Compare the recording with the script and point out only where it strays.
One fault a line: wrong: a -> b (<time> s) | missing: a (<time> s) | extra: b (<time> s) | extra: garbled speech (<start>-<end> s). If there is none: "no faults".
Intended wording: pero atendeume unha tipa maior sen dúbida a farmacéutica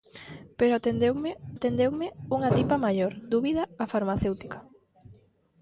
extra: atendeume (1.5 s)
missing: sen (3.1 s)